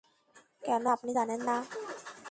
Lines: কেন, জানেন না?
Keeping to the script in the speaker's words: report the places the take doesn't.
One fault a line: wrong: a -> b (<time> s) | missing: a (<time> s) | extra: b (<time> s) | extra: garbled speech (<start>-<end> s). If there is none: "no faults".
extra: আপনি (1.0 s)